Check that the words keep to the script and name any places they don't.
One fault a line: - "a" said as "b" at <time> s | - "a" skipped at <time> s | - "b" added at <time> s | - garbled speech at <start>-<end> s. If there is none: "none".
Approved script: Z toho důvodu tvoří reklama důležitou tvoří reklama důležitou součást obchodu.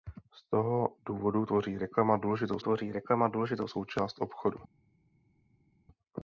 none